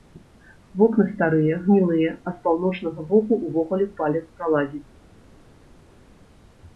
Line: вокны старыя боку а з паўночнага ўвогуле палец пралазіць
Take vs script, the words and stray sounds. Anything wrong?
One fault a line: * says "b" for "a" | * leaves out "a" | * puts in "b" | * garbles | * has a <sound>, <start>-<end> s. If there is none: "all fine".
* says "гнілыя" for "боку"
* puts in "боку"